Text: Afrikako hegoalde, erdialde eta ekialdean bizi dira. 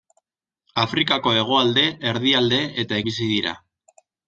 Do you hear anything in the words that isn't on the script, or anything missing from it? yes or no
yes